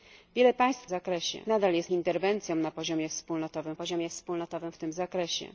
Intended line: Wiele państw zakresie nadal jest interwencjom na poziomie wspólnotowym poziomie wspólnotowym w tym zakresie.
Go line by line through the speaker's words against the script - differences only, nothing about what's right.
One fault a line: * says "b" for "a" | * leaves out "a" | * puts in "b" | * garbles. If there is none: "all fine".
all fine